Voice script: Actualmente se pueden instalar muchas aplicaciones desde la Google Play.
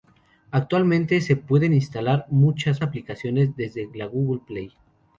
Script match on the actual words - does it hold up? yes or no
yes